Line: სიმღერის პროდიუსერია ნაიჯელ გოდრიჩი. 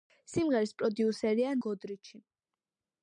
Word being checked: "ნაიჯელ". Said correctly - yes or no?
no